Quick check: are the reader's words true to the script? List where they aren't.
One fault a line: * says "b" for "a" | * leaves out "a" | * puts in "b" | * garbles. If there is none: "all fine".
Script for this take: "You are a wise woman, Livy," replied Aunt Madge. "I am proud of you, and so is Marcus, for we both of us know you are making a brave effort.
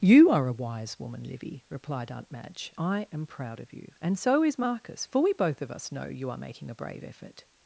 all fine